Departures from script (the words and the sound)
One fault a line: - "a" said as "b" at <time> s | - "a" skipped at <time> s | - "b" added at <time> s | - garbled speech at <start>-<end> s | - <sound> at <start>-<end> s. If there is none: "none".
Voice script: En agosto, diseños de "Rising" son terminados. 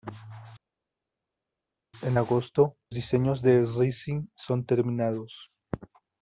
none